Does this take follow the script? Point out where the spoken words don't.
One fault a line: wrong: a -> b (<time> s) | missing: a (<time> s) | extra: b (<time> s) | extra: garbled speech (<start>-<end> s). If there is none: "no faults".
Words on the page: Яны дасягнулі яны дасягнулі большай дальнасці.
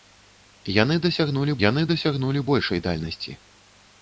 no faults